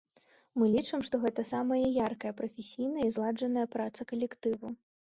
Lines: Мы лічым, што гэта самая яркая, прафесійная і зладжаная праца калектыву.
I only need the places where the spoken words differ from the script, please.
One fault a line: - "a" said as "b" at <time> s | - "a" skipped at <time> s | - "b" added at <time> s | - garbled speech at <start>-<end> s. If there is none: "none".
none